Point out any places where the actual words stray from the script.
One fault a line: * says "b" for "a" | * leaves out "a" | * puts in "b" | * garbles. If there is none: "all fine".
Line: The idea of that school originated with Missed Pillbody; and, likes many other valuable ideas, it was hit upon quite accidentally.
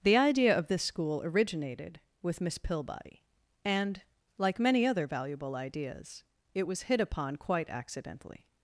* says "this" for "that"
* says "Miss" for "Missed"
* says "like" for "likes"